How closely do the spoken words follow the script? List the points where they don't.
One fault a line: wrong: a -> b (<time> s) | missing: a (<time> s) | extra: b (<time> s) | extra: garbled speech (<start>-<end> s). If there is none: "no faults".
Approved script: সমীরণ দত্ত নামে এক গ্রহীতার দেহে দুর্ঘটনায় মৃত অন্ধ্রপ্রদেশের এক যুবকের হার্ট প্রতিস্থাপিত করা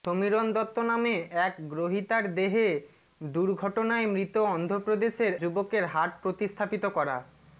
missing: এক (5.3 s)